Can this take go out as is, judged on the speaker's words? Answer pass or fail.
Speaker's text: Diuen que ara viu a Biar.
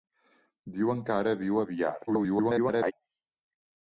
fail